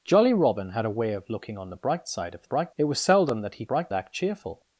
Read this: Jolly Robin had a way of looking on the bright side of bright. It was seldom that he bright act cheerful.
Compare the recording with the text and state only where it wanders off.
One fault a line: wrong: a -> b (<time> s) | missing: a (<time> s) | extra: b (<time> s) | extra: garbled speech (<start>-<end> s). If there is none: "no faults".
no faults